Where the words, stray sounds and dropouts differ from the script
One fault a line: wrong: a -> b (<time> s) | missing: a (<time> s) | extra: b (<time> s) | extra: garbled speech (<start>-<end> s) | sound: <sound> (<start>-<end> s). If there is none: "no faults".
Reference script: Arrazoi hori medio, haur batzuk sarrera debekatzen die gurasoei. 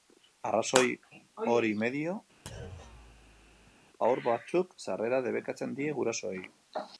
sound: thud (2.5-3.8 s)